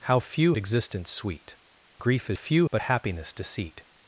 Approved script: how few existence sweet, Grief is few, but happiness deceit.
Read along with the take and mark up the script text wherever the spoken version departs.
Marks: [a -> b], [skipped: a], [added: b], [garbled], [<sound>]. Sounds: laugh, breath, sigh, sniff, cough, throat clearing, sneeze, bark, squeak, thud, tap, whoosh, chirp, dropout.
how few existence sweet, Grief is few, but happiness deceit.